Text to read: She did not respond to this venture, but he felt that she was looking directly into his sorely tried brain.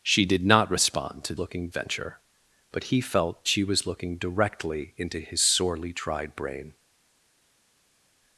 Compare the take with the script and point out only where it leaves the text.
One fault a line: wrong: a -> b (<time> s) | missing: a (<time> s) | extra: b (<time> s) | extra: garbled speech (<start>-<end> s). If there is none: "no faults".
wrong: this -> looking (1.4 s)
missing: that (3.5 s)